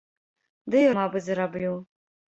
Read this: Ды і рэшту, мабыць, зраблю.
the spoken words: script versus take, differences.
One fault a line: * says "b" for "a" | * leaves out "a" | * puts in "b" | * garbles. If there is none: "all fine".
* leaves out "рэшту"